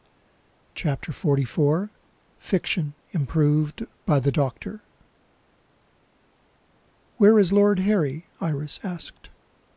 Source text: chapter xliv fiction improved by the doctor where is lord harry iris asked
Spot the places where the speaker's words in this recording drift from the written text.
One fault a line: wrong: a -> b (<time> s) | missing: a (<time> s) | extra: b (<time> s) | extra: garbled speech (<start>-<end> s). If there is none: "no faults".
no faults